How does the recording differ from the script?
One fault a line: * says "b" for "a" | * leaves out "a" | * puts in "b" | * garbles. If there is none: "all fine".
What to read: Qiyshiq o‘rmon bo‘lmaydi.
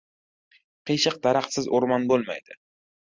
* puts in "daraxtsiz"